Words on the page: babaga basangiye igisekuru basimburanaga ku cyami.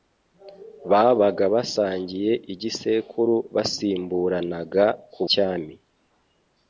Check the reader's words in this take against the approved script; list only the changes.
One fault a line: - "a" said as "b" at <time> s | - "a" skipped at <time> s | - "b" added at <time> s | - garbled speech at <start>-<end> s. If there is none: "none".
none